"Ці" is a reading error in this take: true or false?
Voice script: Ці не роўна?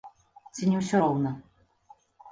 false